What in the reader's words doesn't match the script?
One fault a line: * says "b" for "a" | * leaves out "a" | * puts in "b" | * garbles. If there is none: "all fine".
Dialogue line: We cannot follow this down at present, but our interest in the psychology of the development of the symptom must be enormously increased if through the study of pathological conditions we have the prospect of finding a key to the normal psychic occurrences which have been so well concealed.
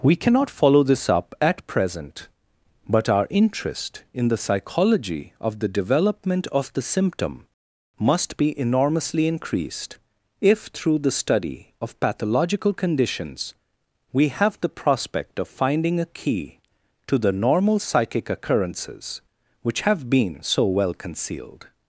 * says "up" for "down"